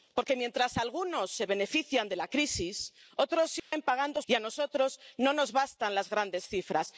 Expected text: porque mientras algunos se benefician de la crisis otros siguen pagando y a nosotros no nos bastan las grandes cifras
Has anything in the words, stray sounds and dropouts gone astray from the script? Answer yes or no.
yes